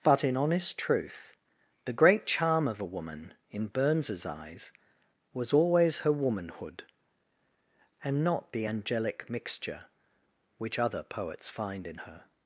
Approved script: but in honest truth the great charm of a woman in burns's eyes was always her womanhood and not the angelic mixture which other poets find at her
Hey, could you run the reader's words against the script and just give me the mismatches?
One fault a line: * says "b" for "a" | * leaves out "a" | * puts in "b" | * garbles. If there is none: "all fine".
* says "in" for "at"